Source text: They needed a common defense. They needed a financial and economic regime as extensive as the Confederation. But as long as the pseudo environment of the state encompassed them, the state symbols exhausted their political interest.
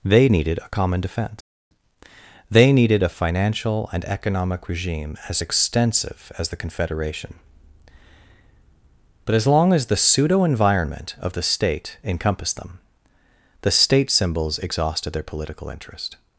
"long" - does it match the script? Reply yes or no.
yes